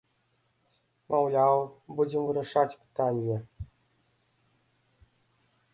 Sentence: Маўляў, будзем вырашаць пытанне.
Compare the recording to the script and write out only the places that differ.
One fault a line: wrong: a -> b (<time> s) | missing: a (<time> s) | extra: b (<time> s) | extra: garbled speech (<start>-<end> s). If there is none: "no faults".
no faults